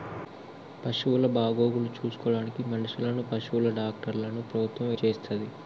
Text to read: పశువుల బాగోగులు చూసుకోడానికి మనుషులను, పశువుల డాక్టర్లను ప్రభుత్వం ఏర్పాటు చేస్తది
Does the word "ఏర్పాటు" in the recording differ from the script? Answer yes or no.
yes